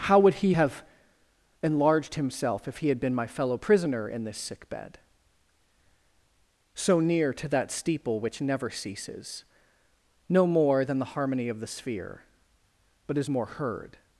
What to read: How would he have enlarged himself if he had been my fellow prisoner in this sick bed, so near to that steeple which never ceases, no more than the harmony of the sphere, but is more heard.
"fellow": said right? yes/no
yes